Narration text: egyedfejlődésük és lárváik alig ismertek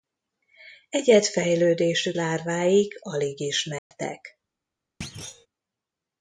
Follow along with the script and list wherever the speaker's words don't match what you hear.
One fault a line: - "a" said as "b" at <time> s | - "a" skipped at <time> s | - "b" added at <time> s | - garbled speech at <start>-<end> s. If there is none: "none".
- "és" skipped at 2.2 s